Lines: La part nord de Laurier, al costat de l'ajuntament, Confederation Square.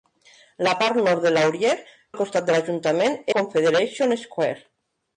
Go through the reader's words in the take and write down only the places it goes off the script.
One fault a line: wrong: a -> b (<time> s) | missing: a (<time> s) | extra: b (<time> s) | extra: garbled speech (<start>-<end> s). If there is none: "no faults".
no faults